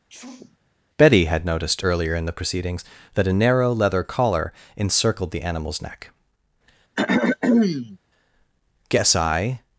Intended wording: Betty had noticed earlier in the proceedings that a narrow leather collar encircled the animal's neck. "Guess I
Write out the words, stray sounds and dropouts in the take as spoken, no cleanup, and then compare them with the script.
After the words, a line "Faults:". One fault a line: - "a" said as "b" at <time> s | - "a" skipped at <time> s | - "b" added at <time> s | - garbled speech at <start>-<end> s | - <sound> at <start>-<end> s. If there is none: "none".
Betty had noticed earlier in the proceedings that a narrow leather collar encircled the animal's neck. "Guess I
Faults:
- sneeze at 0.1-0.6 s
- throat clearing at 7.0-8.0 s